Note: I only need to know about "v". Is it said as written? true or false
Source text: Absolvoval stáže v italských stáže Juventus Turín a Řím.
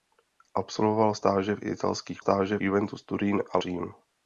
true